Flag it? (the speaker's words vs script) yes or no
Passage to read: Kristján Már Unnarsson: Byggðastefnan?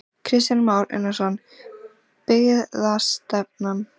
no